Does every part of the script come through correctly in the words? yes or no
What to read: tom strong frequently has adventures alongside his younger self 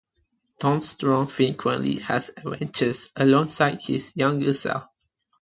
yes